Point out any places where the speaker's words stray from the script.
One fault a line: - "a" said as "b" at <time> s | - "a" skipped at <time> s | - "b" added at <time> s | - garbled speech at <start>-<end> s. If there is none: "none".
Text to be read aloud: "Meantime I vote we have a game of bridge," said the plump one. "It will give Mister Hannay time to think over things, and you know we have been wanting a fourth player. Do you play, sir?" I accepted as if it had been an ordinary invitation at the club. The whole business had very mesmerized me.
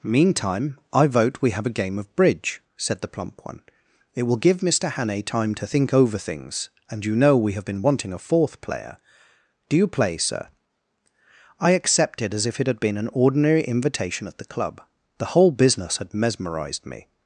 - "very" skipped at 16.1 s